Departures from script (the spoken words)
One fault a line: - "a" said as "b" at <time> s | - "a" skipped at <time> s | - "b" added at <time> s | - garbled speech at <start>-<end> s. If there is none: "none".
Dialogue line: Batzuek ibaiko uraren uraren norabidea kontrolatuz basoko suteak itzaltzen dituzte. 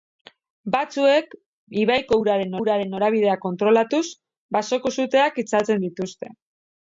none